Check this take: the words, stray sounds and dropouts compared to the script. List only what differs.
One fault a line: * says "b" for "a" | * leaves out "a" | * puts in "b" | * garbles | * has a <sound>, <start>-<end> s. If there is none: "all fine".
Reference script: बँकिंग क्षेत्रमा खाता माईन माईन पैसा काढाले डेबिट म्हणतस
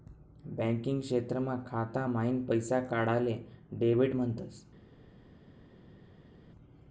* leaves out "माईन"